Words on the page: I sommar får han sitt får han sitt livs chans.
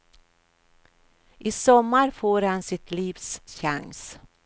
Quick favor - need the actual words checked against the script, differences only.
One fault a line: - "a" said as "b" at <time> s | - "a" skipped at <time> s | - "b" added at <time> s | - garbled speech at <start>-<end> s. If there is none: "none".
- "får han sitt" skipped at 2.9 s